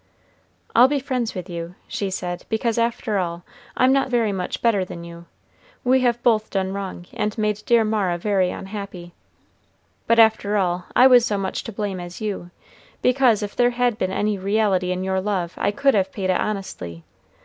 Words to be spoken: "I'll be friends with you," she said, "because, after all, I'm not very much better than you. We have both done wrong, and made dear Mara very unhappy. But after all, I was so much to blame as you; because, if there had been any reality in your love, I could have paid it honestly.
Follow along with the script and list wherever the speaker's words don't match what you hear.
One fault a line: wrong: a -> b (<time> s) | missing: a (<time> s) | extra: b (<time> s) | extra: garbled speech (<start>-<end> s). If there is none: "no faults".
no faults